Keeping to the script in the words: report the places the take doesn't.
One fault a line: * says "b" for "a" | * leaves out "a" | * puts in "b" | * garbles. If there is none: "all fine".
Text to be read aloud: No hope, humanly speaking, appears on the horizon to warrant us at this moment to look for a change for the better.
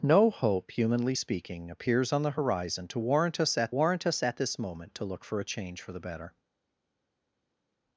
* puts in "warrant us at"